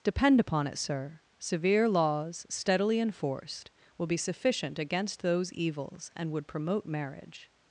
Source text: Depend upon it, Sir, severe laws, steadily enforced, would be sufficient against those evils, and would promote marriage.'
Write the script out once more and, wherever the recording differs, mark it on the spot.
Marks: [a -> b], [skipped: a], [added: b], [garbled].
Depend upon it, Sir, severe laws, steadily enforced, [would -> will] be sufficient against those evils, and would promote marriage.'